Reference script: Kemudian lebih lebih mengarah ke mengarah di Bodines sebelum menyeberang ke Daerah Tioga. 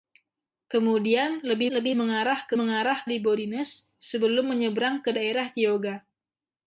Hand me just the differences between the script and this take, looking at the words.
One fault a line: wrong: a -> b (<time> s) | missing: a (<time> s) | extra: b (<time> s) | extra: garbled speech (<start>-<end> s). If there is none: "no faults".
no faults